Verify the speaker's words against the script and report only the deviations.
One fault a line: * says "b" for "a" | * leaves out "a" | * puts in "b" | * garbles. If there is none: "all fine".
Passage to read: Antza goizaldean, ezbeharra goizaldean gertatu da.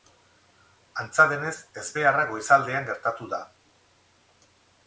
* says "denez" for "goizaldean"